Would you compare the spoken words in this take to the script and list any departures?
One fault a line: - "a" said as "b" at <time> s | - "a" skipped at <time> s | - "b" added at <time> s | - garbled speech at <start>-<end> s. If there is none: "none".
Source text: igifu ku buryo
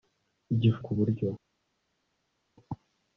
none